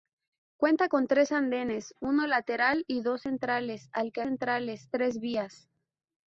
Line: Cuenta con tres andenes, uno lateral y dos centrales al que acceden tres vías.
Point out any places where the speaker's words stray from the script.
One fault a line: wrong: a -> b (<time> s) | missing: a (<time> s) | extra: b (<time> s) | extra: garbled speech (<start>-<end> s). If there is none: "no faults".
wrong: acceden -> centrales (4.2 s)